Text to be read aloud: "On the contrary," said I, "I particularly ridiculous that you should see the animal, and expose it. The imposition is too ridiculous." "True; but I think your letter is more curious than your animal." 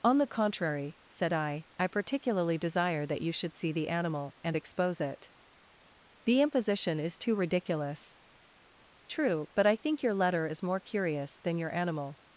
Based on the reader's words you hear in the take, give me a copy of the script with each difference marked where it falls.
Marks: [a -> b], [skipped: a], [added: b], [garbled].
"On the contrary," said I, "I particularly [ridiculous -> desire] that you should see the animal, and expose it. The imposition is too ridiculous." "True; but I think your letter is more curious than your animal."